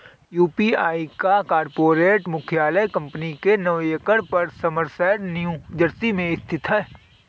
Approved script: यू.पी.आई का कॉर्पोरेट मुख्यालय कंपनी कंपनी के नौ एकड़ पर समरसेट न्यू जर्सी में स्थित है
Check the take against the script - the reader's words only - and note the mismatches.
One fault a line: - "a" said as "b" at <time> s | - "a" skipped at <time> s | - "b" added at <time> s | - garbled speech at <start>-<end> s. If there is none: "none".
- "कंपनी" skipped at 3.3 s